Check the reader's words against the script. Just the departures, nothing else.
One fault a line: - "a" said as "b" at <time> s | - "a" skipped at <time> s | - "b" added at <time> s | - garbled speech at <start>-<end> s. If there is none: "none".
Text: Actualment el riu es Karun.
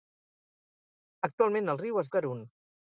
none